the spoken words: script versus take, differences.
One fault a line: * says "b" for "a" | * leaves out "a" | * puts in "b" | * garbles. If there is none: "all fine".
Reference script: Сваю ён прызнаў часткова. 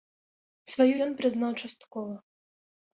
all fine